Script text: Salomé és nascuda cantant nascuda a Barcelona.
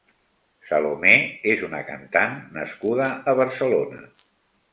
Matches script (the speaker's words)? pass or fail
fail